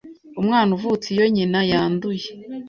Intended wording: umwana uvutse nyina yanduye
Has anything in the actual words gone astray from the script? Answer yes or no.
yes